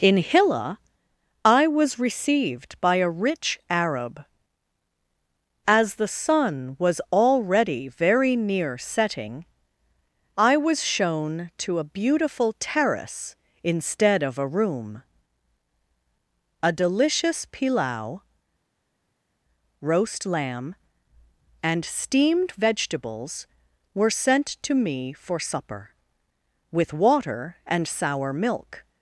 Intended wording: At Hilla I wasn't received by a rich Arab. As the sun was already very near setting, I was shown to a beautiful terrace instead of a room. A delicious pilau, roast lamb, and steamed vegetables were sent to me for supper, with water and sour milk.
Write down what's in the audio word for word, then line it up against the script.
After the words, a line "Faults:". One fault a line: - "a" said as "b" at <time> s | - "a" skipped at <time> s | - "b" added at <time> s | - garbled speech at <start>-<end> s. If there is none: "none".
In Hilla I was received by a rich Arab. As the sun was already very near setting, I was shown to a beautiful terrace instead of a room. A delicious pilau, roast lamb, and steamed vegetables were sent to me for supper, with water and sour milk.
Faults:
- "At" said as "In" at 0.0 s
- "wasn't" said as "was" at 1.7 s